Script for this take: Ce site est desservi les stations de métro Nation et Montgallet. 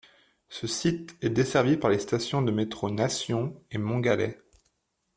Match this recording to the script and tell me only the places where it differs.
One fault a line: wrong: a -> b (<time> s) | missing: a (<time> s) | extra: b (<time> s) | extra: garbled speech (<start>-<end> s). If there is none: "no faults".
extra: par (1.8 s)